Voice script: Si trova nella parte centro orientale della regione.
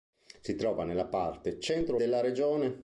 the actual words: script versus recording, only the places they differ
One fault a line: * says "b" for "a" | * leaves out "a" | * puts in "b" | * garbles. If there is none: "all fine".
* leaves out "orientale"